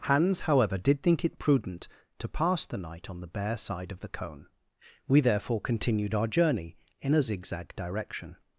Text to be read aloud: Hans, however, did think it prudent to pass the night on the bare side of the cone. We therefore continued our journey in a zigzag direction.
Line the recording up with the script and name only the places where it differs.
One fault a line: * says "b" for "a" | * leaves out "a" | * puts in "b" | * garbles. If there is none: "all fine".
all fine